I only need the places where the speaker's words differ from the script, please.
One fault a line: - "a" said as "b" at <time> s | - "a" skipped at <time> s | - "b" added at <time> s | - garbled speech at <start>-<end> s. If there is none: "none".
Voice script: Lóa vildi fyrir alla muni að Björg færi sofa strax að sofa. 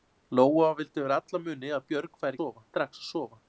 none